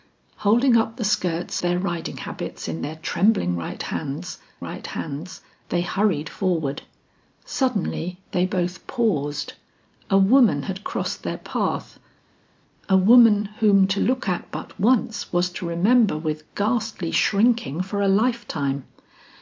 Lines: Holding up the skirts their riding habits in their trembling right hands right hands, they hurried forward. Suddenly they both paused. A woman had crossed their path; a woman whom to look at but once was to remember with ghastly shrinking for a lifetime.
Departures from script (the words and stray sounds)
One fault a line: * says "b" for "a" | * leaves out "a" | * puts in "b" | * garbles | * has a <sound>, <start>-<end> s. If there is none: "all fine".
all fine